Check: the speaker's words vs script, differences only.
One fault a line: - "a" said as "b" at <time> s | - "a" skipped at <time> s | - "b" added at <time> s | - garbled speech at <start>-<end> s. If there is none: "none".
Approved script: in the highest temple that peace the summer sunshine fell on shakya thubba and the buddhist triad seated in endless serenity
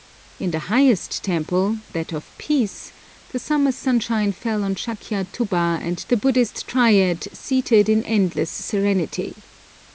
- "of" added at 2.1 s